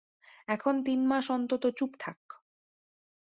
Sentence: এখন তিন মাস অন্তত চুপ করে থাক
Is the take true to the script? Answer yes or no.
no